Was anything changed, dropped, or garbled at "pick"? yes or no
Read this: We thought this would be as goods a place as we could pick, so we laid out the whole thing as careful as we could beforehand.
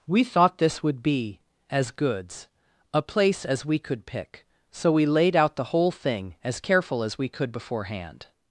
no